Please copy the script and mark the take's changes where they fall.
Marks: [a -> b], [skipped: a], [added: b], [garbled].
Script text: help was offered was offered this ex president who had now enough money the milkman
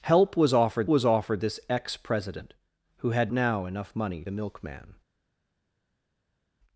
help was offered was offered this ex president who had now enough money the milkman